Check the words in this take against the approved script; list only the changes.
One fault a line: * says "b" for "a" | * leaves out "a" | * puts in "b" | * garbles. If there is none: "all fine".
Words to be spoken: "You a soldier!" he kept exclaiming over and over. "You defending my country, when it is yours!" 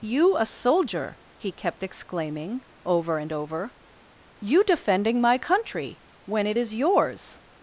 all fine